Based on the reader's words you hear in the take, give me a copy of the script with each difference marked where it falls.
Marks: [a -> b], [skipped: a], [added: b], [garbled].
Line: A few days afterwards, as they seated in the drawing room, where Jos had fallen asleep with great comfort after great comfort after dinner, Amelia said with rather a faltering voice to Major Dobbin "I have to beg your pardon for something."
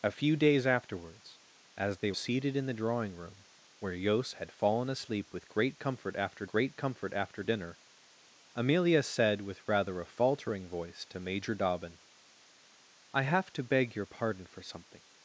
A few days afterwards, as they seated in the drawing room, where Jos had fallen asleep with great comfort after great comfort after dinner, Amelia said with rather a faltering voice to Major Dobbin "I have to beg your pardon for something."